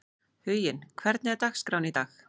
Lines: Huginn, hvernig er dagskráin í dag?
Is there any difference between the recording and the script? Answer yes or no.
no